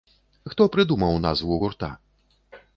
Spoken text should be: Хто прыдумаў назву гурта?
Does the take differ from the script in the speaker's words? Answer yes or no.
no